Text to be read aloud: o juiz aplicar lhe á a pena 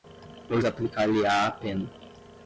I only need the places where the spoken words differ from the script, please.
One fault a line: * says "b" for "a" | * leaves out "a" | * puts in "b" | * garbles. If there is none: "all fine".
* leaves out "juiz"